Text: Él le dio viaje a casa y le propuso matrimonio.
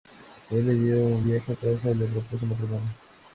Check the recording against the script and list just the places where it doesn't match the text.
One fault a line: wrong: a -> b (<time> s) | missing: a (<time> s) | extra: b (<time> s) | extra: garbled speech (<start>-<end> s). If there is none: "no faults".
extra: un (1.1 s)